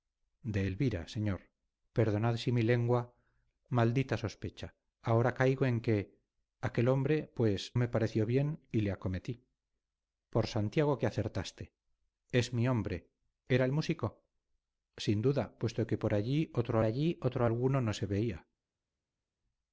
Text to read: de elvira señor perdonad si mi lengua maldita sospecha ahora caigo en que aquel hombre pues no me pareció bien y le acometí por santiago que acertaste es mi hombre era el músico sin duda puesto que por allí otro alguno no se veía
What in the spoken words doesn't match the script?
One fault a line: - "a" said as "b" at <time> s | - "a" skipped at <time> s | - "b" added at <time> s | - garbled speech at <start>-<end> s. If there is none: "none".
- "no" skipped at 7.8 s
- "allí otro" added at 16.8 s